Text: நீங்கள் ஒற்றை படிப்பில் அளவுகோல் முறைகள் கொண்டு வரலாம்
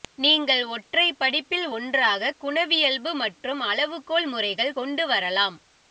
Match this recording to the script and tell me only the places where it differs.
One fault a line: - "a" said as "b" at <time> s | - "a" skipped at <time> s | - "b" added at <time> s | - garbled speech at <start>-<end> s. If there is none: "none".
- "ஒன்றாக குணவியல்பு மற்றும்" added at 1.7 s